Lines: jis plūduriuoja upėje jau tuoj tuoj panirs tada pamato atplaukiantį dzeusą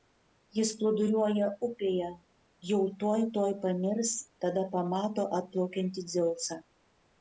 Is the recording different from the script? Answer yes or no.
no